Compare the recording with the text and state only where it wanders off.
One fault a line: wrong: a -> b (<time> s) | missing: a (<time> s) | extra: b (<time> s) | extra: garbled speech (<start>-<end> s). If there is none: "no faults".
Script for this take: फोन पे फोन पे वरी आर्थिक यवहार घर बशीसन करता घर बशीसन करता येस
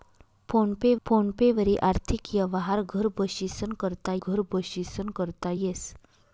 no faults